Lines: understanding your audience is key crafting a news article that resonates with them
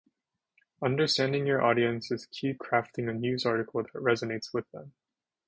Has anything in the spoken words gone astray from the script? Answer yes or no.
no